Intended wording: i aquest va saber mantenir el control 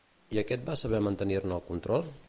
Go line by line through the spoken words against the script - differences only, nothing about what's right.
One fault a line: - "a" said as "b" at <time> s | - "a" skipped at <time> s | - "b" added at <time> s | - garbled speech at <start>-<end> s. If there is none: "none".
- "ne" added at 1.4 s